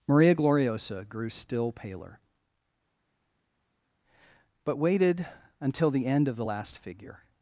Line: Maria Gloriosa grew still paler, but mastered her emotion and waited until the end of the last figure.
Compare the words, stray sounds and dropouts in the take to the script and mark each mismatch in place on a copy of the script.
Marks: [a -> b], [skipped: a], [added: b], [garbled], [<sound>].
Maria Gloriosa grew still paler, but [skipped: mastered her emotion and] waited until the end of the last figure.